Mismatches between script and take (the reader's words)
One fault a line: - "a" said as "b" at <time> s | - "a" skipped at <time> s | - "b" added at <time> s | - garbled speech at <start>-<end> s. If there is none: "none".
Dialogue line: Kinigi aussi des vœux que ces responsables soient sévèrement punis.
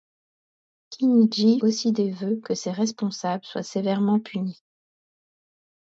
none